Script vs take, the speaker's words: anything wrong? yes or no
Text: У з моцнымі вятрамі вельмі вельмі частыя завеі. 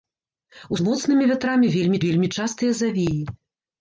no